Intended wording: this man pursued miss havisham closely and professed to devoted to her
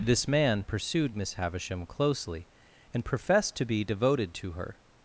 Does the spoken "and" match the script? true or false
true